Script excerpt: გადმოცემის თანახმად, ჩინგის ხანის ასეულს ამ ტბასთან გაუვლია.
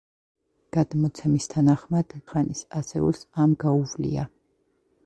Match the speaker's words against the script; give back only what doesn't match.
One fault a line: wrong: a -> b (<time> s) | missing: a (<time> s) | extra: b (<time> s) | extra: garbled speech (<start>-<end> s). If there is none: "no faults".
missing: ჩინგის (2.2 s)
missing: ტბასთან (3.5 s)